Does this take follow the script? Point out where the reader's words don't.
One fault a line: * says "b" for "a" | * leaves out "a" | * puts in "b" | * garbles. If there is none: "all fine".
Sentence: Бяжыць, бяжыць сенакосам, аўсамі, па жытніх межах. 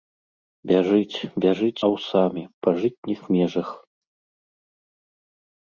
* leaves out "сенакосам"